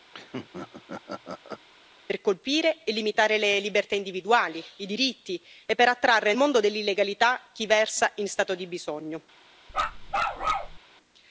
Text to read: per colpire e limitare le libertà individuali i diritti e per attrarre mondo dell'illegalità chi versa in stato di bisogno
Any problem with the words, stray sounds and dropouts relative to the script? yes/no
yes